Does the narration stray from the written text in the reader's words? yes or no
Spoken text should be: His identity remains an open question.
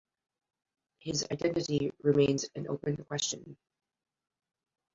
no